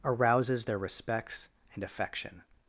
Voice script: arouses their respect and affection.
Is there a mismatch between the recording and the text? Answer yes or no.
yes